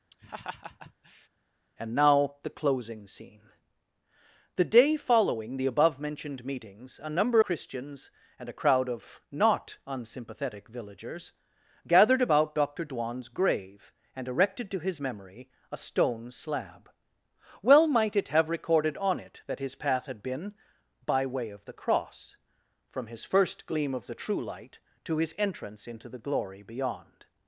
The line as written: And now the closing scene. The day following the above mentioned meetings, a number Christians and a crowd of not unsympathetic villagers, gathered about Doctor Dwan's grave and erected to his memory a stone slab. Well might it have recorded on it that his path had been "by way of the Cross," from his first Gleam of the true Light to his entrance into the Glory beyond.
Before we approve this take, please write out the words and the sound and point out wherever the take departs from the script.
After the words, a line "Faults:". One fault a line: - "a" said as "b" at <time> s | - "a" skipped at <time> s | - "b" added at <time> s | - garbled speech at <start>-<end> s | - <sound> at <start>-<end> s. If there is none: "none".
And now the closing scene. The day following the above mentioned meetings, a number Christians and a crowd of not unsympathetic villagers, gathered about Doctor Dwan's grave and erected to his memory a stone slab. Well might it have recorded on it that his path had been "by way of the Cross," from his first Gleam of the true Light to his entrance into the Glory beyond.
Faults:
- laugh at 0.1-1.3 s